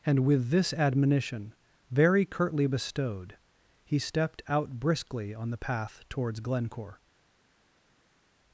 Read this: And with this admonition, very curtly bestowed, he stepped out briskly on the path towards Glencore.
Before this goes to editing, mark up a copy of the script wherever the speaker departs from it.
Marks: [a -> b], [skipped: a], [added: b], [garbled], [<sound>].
And with this admonition, very curtly bestowed, he stepped out briskly on the path towards Glencore.